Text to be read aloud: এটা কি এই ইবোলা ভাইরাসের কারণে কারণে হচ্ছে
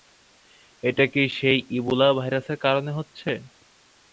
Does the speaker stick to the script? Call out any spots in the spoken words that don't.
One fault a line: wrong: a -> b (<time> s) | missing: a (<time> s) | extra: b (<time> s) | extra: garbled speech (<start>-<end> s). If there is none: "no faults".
wrong: এই -> সেই (1.4 s)
missing: কারণে (2.9 s)